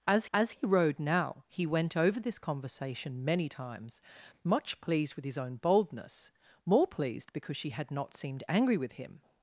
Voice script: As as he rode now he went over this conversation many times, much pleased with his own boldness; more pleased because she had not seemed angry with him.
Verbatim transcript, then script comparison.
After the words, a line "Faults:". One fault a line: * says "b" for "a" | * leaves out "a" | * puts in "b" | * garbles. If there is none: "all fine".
As as he rode now he went over this conversation many times, much pleased with his own boldness; more pleased because she had not seemed angry with him.
Faults:
all fine